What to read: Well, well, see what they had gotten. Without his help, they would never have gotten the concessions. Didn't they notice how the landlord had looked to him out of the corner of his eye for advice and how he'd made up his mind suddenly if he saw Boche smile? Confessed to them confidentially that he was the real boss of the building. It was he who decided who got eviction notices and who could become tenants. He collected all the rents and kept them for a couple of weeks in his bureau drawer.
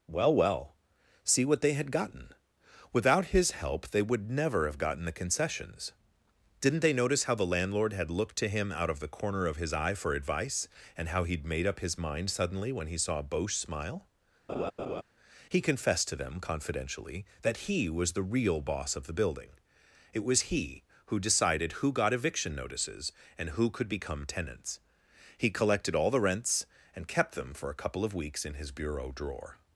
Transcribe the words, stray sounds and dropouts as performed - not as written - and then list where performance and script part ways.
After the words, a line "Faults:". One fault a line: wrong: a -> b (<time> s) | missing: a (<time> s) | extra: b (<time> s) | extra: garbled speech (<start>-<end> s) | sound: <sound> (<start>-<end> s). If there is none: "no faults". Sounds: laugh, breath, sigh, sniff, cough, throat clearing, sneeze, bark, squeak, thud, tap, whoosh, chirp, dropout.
Well, well, see what they had gotten. Without his help, they would never have gotten the concessions. Didn't they notice how the landlord had looked to him out of the corner of his eye for advice and how he'd made up his mind suddenly when he saw Boche smile? He confessed to them confidentially that he was the real boss of the building. It was he who decided who got eviction notices and who could become tenants. He collected all the rents and kept them for a couple of weeks in his bureau drawer.
Faults:
wrong: if -> when (12.7 s)
sound: laugh (14.5-15.0 s)
extra: He (15.5 s)